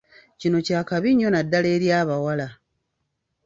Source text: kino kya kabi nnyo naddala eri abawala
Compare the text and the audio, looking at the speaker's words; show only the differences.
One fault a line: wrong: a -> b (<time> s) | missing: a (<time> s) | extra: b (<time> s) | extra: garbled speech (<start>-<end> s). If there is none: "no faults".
no faults